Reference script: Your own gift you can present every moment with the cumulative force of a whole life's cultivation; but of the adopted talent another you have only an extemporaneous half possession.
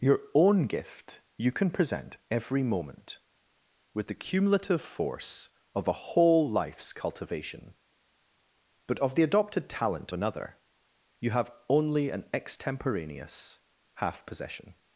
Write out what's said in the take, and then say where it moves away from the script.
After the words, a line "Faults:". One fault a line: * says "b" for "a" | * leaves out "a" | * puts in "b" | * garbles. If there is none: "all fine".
Your own gift you can present every moment with the cumulative force of a whole life's cultivation; but of the adopted talent another you have only an extemporaneous half possession.
Faults:
all fine